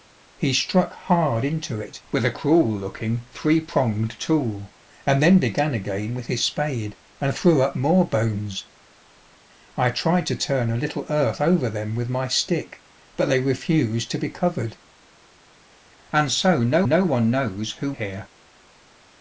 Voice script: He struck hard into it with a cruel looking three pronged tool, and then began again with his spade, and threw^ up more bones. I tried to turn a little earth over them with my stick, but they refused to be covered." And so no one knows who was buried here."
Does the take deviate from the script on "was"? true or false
true